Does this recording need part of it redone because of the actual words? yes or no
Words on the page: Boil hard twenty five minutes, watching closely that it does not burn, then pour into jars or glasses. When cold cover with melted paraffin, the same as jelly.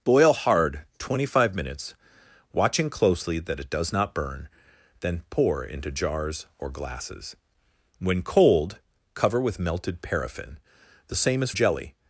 no